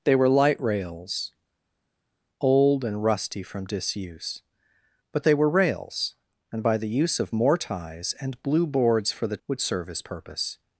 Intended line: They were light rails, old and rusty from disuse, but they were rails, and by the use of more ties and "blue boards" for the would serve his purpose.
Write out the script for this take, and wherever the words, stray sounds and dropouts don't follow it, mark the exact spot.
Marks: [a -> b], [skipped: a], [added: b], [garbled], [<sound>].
They were light rails, old and rusty from disuse, but they were rails, and by the use of more ties and "blue boards" for the would serve his purpose.